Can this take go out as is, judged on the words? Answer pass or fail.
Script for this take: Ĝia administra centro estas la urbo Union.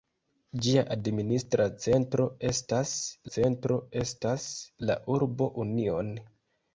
fail